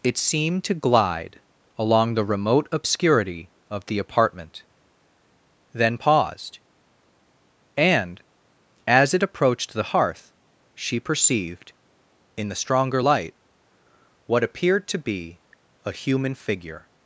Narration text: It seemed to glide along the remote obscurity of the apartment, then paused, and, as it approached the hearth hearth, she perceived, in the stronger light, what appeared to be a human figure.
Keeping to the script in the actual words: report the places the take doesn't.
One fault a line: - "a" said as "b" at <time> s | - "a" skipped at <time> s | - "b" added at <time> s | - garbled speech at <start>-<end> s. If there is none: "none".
- "hearth" skipped at 10.3 s